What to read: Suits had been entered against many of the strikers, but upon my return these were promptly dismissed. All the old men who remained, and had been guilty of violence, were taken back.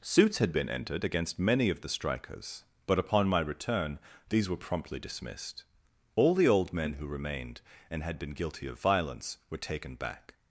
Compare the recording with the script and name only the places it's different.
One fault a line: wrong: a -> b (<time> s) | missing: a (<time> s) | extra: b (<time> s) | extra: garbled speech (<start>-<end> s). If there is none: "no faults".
no faults